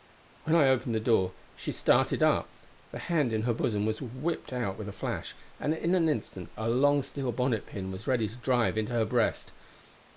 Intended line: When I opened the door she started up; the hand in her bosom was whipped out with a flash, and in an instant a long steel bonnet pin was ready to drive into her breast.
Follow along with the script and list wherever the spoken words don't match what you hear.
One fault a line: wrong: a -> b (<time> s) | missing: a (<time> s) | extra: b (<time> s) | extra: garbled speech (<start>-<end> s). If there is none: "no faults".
no faults